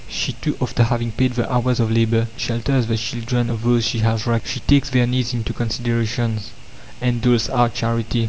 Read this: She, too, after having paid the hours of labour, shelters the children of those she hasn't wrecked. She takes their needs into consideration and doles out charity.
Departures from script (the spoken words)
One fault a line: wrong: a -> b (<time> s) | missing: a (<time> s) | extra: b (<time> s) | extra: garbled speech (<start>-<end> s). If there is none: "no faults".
wrong: hasn't -> has (4.0 s)